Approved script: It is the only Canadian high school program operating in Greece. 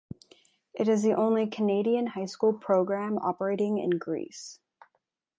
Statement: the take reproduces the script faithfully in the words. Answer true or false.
true